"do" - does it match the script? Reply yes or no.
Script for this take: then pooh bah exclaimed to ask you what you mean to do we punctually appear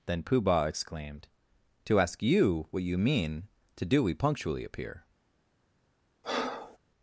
yes